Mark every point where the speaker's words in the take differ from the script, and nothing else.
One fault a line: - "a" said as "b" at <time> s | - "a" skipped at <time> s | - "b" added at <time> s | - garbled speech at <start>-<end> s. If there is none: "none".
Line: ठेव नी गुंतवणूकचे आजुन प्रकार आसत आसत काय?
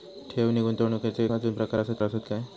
none